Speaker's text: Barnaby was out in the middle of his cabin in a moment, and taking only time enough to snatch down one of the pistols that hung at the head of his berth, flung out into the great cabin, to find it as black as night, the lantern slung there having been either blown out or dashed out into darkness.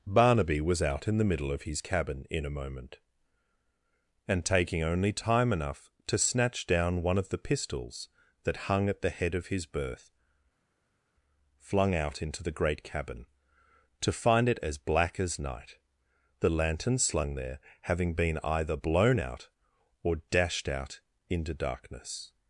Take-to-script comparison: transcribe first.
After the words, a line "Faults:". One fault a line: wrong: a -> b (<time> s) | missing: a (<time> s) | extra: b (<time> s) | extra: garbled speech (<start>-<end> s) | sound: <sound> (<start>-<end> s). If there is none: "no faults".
Barnaby was out in the middle of his cabin in a moment, and taking only time enough to snatch down one of the pistols that hung at the head of his berth, flung out into the great cabin, to find it as black as night, the lantern slung there having been either blown out or dashed out into darkness.
Faults:
no faults